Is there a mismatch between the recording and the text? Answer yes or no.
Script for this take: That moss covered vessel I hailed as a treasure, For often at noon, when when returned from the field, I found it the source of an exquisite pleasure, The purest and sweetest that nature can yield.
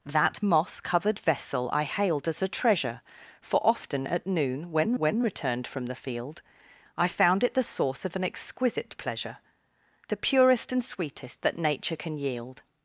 no